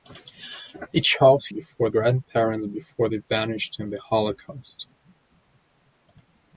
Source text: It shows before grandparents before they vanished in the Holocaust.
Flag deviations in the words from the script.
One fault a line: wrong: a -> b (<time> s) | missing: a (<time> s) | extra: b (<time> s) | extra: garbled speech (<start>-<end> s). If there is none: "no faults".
no faults